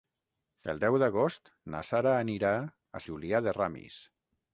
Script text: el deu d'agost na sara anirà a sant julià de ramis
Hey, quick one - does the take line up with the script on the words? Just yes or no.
no